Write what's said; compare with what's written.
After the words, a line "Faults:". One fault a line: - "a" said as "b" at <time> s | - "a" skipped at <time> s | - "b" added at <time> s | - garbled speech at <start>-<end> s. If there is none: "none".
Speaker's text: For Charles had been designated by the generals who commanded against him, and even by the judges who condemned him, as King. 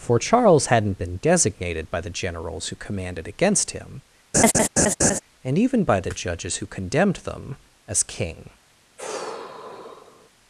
For Charles hadn't been designated by the generals who commanded against him, and even by the judges who condemned them, as King.
Faults:
- "had" said as "hadn't" at 0.7 s
- "him" said as "them" at 7.2 s